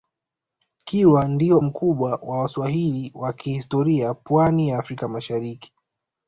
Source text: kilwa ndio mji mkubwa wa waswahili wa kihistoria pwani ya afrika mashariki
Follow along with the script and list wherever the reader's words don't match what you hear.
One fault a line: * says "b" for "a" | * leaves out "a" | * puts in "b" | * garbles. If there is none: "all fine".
* leaves out "mji"